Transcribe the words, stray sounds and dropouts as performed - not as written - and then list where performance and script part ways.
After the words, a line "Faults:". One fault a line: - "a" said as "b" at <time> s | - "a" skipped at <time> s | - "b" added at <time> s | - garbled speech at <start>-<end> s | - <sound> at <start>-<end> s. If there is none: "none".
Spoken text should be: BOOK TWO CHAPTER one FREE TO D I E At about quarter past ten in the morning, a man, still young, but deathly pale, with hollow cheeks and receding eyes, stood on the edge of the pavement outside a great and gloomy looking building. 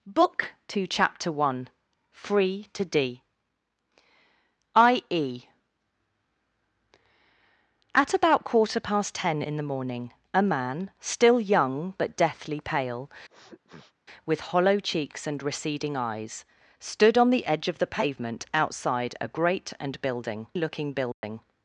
BOOK TWO CHAPTER one FREE TO D I E At about quarter past ten in the morning, a man, still young, but deathly pale, with hollow cheeks and receding eyes, stood on the edge of the pavement outside a great and building looking building.
Faults:
- sniff at 13.3-13.9 s
- "gloomy" said as "building" at 20.0 s
- dropout at 21.1-21.2 s